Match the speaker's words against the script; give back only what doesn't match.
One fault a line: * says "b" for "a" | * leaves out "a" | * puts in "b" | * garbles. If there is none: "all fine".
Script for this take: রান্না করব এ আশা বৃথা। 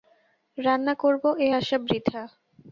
all fine